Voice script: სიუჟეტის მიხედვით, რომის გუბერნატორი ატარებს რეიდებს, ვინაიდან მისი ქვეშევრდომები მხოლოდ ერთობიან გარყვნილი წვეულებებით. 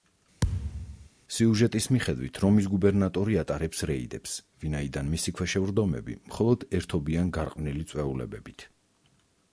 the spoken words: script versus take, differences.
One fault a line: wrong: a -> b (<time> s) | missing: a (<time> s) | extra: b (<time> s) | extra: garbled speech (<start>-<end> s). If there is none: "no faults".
no faults